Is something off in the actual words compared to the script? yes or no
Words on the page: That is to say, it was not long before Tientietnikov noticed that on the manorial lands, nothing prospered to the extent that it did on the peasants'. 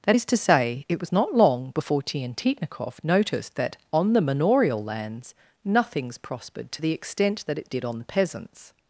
yes